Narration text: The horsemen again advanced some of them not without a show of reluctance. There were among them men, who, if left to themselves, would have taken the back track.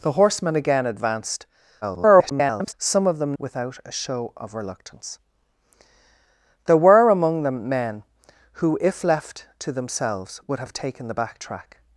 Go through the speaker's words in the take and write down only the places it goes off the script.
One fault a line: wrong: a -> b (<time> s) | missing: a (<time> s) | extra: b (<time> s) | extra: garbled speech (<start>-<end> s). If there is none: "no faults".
extra: garbled speech (1.8-2.7 s)
missing: not (3.4 s)